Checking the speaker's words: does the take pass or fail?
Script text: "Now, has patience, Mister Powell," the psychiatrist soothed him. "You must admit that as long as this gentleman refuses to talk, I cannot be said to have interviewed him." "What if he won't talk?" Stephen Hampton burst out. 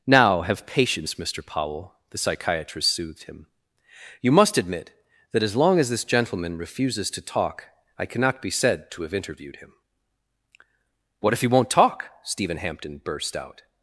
fail